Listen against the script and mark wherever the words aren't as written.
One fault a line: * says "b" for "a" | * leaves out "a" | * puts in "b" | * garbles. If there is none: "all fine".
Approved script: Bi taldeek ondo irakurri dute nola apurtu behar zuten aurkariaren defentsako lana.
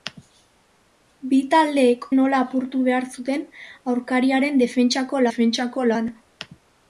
* leaves out "ondo irakurri dute"
* puts in "defentsako"